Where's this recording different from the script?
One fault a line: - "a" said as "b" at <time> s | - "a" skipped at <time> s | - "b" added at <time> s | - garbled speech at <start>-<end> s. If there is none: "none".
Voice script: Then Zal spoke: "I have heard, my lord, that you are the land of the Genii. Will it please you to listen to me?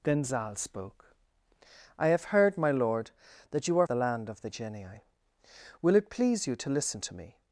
none